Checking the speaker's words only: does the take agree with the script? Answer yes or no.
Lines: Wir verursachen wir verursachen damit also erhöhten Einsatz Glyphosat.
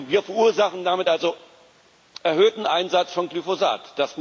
no